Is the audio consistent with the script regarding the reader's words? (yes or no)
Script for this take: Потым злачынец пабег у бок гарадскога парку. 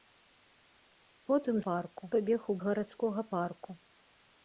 no